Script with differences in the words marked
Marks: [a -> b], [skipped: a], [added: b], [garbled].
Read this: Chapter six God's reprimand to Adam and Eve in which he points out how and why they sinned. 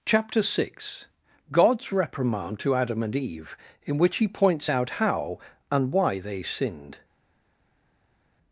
Chapter six God's reprimand to Adam and Eve in which he points out how and why they sinned.